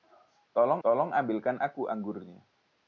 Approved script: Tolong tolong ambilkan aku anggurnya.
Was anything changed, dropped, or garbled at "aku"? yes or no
no